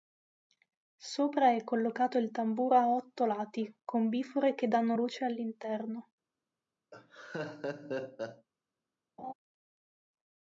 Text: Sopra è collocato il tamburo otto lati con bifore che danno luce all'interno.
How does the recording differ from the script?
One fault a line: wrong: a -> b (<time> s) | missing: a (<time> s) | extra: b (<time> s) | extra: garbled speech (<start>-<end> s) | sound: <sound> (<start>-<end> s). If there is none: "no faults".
extra: a (2.8 s)
sound: laugh (6.9-8.5 s)
sound: laugh (9.2-9.3 s)